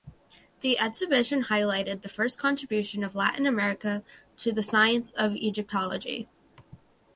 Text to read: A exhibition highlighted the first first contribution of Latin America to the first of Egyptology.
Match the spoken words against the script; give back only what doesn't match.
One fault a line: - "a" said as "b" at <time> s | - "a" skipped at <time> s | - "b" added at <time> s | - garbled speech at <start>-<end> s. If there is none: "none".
- "A" said as "The" at 0.6 s
- "first" skipped at 2.4 s
- "first" said as "science" at 4.6 s